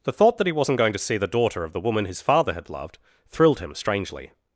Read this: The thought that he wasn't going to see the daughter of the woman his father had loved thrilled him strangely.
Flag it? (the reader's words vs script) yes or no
no